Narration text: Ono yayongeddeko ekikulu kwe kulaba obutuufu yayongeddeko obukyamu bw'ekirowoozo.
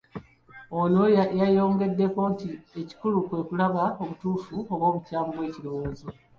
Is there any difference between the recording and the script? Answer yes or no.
yes